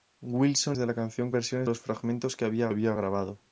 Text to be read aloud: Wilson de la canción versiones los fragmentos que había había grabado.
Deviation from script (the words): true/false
false